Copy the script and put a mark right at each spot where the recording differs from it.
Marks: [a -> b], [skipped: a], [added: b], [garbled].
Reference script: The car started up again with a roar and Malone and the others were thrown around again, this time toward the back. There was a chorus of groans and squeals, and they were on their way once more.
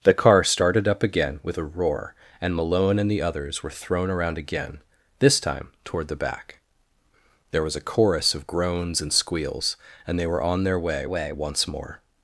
The car started up again with a roar and Malone and the others were thrown around again, this time toward the back. There was a chorus of groans and squeals, and they were on their way [added: way] once more.